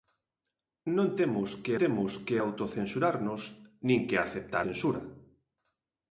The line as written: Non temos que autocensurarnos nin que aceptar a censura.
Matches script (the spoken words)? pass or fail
fail